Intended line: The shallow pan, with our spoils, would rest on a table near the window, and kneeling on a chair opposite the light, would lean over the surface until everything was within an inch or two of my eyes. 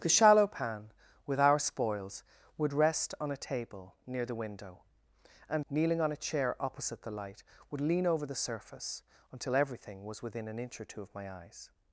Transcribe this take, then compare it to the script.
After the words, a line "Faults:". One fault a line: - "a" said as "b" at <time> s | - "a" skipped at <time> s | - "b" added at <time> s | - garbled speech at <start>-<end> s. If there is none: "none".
The shallow pan, with our spoils, would rest on a table near the window, and kneeling on a chair opposite the light, would lean over the surface until everything was within an inch or two of my eyes.
Faults:
none